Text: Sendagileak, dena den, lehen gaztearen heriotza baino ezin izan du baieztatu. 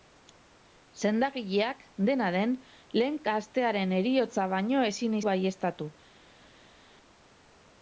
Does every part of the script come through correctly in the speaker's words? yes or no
no